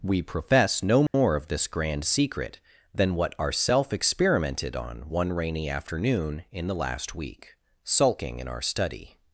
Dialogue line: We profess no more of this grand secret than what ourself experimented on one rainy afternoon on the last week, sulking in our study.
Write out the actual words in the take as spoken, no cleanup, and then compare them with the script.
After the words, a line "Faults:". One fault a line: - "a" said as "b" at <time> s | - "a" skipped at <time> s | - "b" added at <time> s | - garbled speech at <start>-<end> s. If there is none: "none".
We profess no more of this grand secret than what ourself experimented on one rainy afternoon in the last week, sulking in our study.
Faults:
- "on" said as "in" at 6.5 s